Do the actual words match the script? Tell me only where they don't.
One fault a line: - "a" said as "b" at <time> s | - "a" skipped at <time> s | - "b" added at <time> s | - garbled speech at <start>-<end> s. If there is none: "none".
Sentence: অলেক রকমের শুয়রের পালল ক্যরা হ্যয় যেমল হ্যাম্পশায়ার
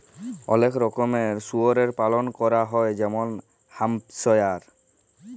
none